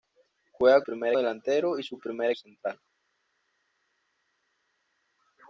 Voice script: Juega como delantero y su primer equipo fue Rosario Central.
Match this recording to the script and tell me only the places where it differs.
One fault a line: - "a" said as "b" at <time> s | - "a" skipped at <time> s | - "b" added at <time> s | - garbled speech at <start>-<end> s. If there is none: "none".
- "como" said as "primer" at 0.8 s
- "equipo fue Rosario" skipped at 2.3 s